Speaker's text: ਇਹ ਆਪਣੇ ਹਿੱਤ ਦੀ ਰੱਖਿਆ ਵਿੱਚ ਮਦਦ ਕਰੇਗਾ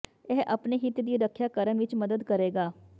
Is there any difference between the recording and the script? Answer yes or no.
yes